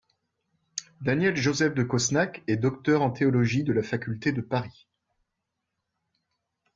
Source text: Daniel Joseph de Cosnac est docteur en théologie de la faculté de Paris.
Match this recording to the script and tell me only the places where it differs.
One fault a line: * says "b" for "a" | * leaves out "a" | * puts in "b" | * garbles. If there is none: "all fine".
all fine